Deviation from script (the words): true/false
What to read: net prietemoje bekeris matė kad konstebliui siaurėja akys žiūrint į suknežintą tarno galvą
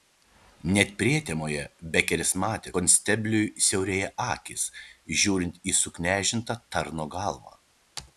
true